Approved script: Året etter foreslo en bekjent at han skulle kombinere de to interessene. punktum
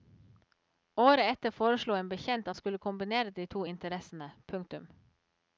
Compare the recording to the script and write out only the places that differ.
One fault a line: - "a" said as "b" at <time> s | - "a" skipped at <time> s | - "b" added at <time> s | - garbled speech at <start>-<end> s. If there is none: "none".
- "at" skipped at 2.5 s